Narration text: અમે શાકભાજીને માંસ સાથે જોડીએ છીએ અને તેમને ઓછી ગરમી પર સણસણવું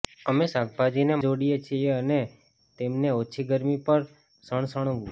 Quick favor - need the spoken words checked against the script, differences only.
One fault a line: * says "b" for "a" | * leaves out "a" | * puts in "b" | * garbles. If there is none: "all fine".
* leaves out "માંસ સાથે"